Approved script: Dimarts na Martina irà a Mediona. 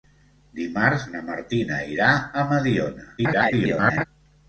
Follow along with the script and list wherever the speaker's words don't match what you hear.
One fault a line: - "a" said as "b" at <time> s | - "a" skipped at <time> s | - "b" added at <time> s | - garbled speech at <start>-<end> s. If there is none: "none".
- garbled speech at 3.2-4.0 s